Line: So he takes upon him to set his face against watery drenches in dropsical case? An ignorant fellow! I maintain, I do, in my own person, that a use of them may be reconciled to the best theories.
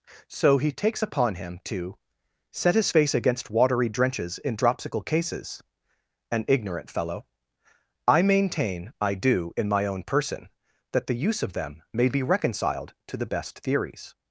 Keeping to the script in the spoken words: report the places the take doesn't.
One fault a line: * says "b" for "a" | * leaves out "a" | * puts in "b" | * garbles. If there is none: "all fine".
* says "cases" for "case"
* says "the" for "a"